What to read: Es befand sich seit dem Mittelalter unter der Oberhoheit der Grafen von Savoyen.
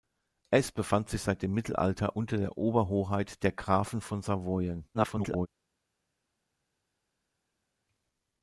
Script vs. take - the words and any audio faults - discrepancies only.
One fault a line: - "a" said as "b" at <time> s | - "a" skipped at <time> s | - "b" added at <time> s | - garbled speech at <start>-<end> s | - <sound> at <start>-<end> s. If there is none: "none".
- garbled speech at 4.9-5.5 s